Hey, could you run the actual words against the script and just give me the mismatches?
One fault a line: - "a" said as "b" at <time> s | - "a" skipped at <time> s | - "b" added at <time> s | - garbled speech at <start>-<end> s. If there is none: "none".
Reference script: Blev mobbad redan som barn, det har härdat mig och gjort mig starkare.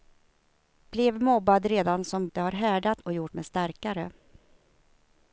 - "barn" skipped at 2.3 s
- "mig" skipped at 3.0 s